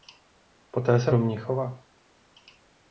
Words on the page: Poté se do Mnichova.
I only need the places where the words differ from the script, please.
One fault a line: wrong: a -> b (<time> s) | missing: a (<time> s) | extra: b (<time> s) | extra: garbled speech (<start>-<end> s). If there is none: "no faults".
no faults